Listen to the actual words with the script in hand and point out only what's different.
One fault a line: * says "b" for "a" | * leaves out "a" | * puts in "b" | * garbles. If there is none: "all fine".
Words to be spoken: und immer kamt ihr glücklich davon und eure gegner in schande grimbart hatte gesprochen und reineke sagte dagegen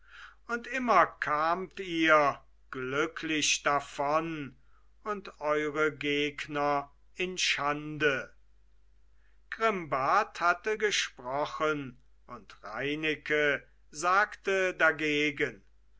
all fine